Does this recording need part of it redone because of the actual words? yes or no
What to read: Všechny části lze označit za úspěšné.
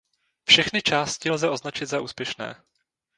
no